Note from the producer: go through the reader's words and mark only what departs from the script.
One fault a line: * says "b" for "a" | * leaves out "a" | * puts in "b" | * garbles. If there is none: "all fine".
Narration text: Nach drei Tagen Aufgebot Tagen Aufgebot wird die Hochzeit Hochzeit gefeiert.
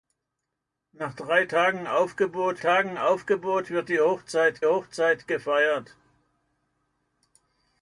all fine